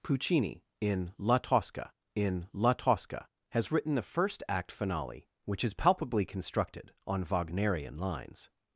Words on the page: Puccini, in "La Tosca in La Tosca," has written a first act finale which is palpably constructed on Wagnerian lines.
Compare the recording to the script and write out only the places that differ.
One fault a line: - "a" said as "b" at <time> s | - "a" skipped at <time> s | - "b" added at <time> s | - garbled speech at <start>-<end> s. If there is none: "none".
none